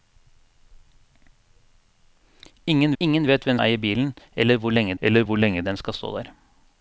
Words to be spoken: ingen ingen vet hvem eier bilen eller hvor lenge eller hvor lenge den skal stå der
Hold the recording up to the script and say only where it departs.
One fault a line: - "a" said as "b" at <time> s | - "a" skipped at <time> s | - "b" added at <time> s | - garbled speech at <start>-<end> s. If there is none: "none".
none